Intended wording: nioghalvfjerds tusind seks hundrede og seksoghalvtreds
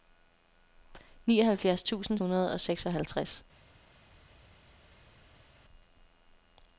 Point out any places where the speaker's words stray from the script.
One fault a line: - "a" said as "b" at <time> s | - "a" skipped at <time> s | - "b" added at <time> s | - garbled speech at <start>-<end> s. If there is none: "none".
- "seks" skipped at 2.2 s